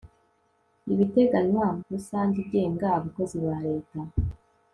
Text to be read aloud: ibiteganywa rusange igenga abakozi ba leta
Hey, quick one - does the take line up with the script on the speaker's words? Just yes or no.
yes